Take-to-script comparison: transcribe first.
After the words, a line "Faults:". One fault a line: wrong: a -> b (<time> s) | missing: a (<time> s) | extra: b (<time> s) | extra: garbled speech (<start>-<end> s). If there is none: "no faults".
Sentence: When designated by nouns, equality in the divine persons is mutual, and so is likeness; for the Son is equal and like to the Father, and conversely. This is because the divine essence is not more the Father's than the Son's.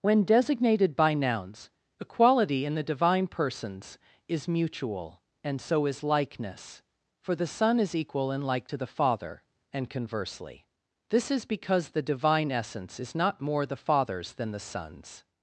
When designated by nouns, equality in the divine persons is mutual, and so is likeness; for the Son is equal and like to the Father, and conversely. This is because the divine essence is not more the Father's than the Son's.
Faults:
no faults